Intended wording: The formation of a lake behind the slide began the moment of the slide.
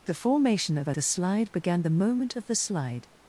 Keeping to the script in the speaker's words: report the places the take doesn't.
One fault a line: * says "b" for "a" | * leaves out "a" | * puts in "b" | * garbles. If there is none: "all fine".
* leaves out "lake behind"